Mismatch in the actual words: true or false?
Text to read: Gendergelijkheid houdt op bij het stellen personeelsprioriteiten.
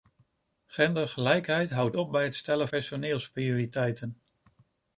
false